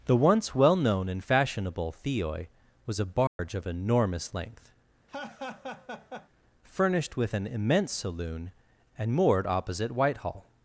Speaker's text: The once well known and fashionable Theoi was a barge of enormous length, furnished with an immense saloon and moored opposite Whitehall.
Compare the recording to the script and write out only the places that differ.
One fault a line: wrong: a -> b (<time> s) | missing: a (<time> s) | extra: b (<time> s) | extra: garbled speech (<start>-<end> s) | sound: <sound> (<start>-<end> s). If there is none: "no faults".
sound: dropout (3.3-3.4 s)
sound: laugh (5.1-6.3 s)